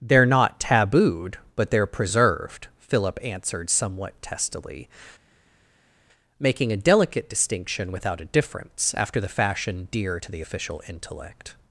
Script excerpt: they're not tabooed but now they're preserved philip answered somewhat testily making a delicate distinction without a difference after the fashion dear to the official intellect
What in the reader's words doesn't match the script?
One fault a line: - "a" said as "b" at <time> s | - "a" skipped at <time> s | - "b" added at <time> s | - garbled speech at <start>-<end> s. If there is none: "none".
- "now" skipped at 1.7 s